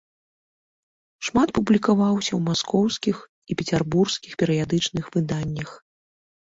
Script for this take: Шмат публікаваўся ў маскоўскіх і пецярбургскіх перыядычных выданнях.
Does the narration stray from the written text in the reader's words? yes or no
no